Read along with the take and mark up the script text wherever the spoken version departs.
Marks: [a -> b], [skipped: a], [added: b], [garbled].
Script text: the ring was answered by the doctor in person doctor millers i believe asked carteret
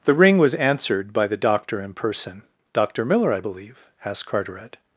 the ring was answered by the doctor in person doctor [millers -> miller] i believe asked carteret